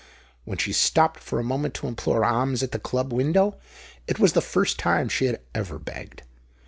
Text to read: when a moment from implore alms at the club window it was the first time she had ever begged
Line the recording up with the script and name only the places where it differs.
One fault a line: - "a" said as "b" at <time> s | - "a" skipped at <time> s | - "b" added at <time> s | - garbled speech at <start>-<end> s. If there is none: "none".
- "she stopped for" added at 0.6 s
- "from" said as "to" at 1.8 s